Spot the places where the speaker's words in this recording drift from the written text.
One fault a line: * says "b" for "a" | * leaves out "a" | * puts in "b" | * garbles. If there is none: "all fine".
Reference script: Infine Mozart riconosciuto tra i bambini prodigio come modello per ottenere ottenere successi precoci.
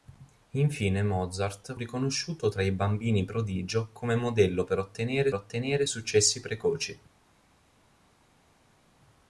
all fine